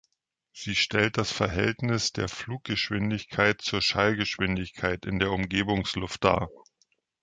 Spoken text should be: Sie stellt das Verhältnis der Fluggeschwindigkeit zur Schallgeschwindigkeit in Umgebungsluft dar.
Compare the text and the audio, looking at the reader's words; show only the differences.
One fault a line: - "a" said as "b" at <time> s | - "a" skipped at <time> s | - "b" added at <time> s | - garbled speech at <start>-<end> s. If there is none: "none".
- "der" added at 5.2 s